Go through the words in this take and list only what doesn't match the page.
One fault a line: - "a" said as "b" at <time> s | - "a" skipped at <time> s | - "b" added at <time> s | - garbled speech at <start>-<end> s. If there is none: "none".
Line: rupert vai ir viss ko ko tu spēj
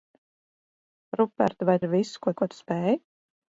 none